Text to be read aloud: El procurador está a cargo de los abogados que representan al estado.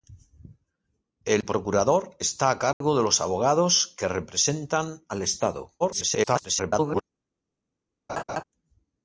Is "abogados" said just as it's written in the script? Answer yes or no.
yes